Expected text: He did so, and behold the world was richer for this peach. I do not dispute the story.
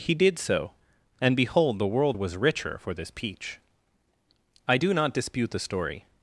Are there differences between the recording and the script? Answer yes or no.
no